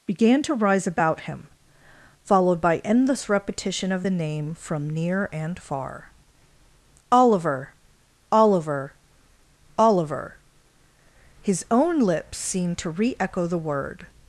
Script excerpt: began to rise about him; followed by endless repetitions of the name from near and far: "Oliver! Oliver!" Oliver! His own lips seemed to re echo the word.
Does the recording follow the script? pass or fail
fail